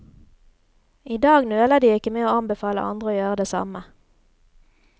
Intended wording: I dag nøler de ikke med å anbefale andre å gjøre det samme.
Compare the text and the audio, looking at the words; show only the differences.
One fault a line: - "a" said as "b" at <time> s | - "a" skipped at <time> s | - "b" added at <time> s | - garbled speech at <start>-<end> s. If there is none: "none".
none